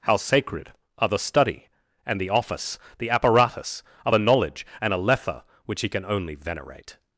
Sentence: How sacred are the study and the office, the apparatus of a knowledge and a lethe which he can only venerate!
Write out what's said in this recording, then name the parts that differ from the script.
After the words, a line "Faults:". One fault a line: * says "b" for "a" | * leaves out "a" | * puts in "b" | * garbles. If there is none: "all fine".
How sacred are the study and the office, the apparatus of a knowledge and a lethe which he can only venerate!
Faults:
all fine